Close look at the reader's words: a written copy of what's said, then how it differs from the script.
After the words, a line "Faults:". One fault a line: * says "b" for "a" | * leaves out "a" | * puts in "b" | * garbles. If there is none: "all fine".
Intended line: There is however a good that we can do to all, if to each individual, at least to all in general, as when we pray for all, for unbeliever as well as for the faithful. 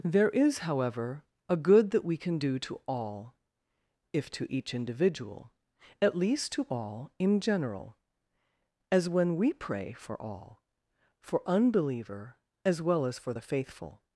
There is however a good that we can do to all, if to each individual, at least to all in general, as when we pray for all, for unbeliever as well as for the faithful.
Faults:
all fine